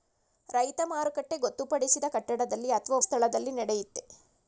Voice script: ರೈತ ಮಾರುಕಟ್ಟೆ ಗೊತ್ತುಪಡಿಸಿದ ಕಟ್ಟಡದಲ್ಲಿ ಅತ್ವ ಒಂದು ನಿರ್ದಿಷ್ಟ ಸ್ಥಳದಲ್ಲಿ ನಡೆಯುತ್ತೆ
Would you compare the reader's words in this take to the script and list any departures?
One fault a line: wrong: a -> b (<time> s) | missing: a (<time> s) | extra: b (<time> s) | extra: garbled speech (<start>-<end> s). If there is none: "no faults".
missing: ಒಂದು ನಿರ್ದಿಷ್ಟ (3.0 s)